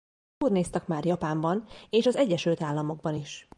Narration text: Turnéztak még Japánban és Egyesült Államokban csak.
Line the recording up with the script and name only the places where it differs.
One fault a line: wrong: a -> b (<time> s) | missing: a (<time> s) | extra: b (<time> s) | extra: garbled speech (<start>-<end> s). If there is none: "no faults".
wrong: még -> már (0.9 s)
extra: az (2.1 s)
wrong: csak -> is (3.1 s)